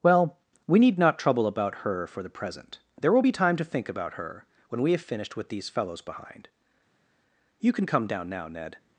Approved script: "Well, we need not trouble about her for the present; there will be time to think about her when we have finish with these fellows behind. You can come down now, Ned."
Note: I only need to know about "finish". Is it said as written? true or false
false